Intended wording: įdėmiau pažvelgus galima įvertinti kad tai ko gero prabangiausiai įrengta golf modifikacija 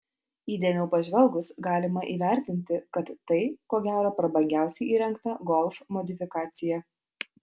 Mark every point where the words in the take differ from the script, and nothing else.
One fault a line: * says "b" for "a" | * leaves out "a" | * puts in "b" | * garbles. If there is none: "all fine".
all fine